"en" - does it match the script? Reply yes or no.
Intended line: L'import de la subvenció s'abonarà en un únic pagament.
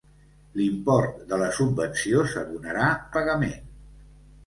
no